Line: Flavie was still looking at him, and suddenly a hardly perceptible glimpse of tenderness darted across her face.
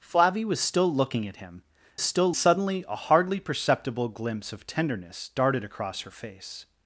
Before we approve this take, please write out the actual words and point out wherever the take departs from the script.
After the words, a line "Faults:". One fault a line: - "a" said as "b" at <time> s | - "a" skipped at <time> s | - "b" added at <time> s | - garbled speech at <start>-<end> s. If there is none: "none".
Flavie was still looking at him, still suddenly a hardly perceptible glimpse of tenderness darted across her face.
Faults:
- "and" said as "still" at 2.0 s